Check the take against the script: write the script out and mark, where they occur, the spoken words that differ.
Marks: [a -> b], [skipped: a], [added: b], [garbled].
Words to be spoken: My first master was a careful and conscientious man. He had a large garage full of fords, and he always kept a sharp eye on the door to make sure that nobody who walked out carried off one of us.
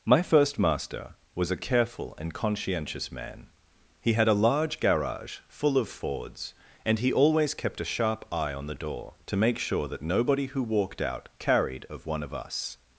My first master was a careful and conscientious man. He had a large garage full of fords, and he always kept a sharp eye on the door to make sure that nobody who walked out carried [off -> of] one of us.